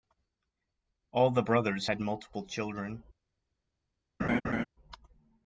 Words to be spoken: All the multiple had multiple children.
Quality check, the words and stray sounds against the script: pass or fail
fail